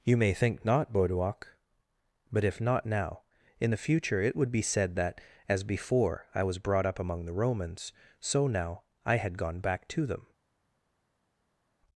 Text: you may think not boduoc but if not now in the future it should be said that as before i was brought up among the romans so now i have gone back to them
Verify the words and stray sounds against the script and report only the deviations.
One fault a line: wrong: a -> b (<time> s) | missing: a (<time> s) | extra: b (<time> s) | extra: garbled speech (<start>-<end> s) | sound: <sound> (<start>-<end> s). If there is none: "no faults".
wrong: should -> would (4.4 s)
wrong: have -> had (9.2 s)